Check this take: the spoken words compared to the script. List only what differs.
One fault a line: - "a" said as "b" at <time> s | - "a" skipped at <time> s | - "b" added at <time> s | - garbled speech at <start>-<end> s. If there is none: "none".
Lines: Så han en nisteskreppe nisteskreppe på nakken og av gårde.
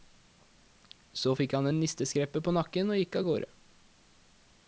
- "fikk" added at 1.3 s
- "nisteskreppe" skipped at 2.4 s
- "gikk" added at 3.0 s